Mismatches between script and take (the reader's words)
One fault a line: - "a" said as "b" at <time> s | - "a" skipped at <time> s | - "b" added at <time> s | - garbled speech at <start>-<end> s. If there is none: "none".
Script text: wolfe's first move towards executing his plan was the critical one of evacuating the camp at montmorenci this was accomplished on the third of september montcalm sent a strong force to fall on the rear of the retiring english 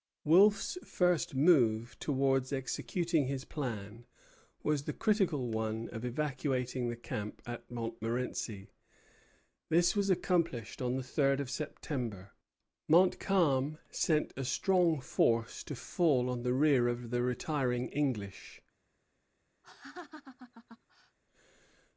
none